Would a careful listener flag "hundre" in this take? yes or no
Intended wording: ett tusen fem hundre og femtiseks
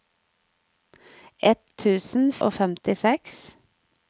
yes